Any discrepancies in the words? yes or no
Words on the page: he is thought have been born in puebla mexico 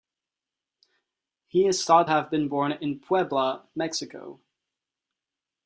no